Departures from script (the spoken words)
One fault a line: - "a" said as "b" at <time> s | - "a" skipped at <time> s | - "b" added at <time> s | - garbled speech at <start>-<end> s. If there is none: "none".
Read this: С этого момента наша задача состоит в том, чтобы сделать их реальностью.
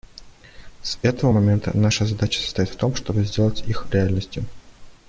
none